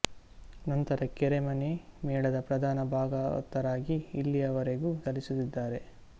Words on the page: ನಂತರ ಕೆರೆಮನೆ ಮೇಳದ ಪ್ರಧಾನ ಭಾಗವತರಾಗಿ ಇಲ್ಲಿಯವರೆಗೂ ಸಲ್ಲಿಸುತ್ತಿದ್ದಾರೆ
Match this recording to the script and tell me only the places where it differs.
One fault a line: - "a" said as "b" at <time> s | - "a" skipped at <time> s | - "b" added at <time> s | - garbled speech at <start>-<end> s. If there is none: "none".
none